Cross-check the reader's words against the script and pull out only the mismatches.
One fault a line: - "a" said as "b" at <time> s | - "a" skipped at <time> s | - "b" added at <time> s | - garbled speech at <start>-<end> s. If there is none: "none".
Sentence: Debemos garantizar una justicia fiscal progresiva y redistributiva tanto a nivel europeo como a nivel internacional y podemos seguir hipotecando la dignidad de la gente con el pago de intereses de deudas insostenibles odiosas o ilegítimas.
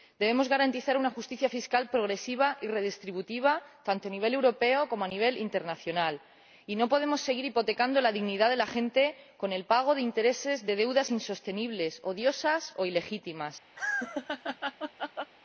- "no" added at 6.8 s